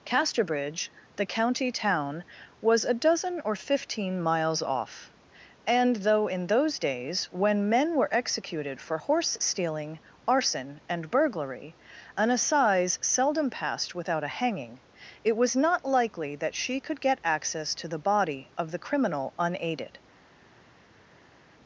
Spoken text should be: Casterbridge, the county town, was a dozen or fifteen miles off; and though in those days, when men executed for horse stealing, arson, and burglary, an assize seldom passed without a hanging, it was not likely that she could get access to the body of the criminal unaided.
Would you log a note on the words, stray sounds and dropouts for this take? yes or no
yes